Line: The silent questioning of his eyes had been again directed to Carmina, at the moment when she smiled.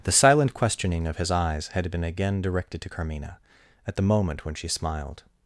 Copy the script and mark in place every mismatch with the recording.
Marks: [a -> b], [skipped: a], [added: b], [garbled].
The silent questioning of his eyes had been again directed to Carmina, at the moment when she smiled.